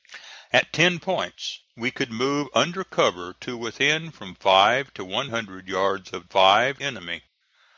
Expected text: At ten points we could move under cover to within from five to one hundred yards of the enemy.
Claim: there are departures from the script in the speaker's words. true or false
true